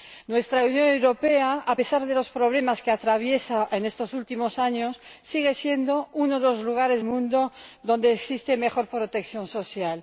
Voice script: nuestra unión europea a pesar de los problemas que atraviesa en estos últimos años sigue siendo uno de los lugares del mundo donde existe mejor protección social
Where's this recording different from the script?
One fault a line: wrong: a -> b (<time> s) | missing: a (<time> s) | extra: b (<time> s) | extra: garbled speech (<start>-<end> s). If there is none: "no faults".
missing: del (7.0 s)